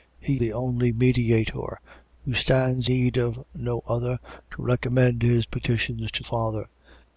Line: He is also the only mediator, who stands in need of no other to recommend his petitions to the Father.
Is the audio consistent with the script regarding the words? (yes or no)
no